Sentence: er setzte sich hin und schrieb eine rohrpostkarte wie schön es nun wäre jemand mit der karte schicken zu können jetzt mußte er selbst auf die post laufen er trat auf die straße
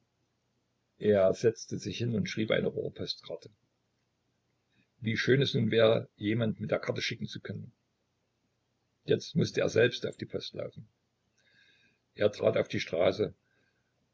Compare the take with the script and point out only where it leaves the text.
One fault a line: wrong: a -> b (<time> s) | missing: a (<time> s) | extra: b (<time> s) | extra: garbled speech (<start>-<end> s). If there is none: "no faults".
no faults